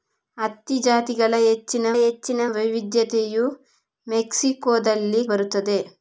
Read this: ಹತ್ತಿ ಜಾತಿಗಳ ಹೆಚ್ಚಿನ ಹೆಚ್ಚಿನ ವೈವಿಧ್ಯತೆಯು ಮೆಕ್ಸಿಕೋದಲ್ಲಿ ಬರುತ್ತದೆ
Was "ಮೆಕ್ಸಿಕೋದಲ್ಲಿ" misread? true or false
false